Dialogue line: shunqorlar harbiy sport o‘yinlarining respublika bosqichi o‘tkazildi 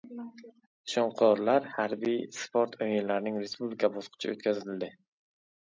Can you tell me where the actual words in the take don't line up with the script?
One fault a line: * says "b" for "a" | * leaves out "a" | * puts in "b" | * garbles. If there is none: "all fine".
all fine